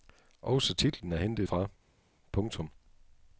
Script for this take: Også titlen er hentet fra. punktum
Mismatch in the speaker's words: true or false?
false